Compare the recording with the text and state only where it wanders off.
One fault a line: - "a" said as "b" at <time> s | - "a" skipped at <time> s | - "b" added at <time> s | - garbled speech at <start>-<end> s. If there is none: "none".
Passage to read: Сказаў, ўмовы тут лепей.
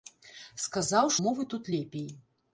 none